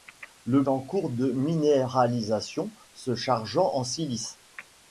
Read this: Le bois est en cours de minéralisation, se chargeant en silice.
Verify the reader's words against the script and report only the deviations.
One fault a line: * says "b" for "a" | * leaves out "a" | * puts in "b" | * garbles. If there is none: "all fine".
* leaves out "bois est"